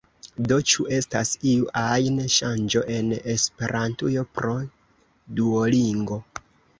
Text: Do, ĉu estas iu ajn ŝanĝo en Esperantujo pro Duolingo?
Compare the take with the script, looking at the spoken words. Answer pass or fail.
pass